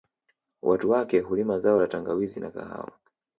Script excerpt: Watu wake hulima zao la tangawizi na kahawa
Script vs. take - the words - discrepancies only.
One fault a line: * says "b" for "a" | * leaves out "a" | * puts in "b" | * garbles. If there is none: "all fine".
all fine